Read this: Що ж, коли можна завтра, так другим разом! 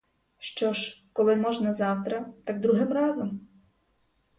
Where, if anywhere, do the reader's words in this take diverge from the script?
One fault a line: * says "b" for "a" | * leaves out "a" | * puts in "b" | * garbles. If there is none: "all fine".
all fine